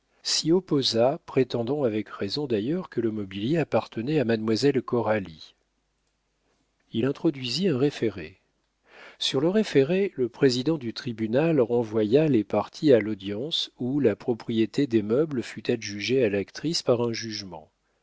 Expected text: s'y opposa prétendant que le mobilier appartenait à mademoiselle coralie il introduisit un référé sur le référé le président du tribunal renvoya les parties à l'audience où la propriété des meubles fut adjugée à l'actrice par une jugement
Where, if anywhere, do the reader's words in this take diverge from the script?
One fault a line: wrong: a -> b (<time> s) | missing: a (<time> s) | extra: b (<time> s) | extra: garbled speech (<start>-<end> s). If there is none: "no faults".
extra: avec raison d'ailleurs (1.8 s)
wrong: une -> un (17.0 s)